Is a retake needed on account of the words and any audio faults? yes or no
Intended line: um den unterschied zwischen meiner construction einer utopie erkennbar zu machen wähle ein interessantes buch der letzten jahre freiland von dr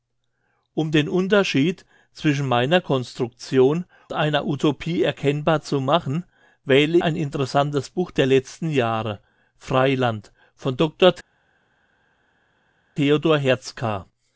no